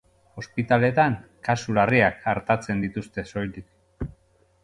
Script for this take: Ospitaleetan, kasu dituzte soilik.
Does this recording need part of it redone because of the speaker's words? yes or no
yes